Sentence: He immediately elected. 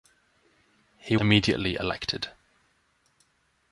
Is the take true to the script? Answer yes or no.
yes